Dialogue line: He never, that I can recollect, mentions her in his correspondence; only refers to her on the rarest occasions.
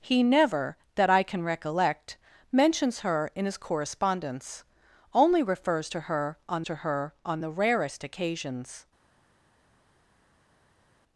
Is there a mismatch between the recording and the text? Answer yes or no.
yes